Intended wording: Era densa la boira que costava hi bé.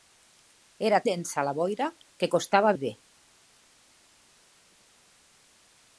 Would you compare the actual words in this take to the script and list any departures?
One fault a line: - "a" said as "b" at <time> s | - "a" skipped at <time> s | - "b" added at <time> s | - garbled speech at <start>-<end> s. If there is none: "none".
none